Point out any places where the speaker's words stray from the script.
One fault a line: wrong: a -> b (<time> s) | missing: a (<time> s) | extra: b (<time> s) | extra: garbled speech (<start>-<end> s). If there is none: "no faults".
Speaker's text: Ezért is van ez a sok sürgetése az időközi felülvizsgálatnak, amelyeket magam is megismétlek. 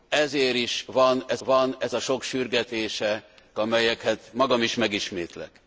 extra: van ez (1.4 s)
missing: az időközi felülvizsgálatnak (3.2 s)